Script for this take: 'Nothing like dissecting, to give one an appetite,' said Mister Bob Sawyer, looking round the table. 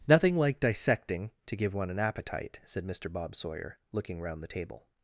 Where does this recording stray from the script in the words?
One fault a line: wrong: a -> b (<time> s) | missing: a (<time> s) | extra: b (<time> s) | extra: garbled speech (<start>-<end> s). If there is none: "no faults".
no faults